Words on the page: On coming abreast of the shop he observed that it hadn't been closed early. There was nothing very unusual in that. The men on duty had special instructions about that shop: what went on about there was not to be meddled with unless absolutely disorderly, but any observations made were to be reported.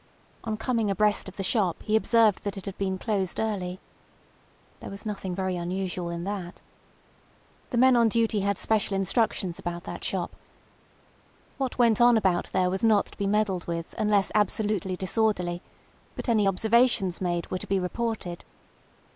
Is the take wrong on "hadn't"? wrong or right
wrong